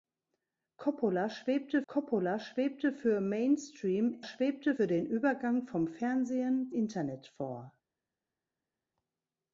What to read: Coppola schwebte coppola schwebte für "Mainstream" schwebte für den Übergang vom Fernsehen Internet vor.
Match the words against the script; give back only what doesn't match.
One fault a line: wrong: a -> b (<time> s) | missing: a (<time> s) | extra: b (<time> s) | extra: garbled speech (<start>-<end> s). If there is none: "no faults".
no faults